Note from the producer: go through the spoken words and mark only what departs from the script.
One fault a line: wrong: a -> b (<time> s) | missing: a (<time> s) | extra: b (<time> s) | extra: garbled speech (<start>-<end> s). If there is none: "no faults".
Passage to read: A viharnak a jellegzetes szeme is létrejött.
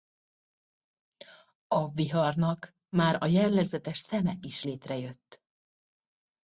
extra: már (2.9 s)